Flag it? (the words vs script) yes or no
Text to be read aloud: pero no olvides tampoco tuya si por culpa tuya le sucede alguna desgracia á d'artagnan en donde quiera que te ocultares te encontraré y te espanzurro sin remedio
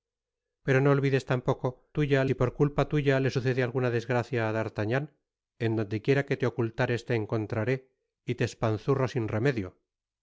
no